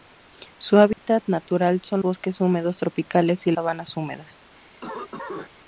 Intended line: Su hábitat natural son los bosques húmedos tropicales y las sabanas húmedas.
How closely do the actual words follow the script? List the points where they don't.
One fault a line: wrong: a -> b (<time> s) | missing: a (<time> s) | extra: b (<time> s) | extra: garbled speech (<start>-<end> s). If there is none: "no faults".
missing: los (2.0 s)
missing: las (3.5 s)